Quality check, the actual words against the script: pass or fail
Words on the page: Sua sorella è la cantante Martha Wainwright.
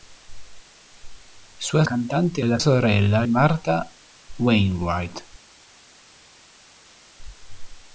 fail